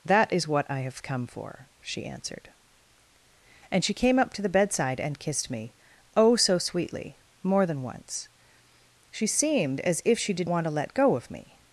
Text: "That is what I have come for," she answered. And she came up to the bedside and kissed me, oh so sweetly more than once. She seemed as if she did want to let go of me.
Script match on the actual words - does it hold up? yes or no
yes